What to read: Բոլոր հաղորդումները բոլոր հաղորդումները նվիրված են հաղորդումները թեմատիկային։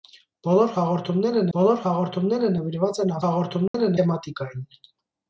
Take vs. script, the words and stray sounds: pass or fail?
fail